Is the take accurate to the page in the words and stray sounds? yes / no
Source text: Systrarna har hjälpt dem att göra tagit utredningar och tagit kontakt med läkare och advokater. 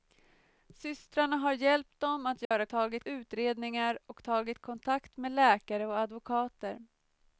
no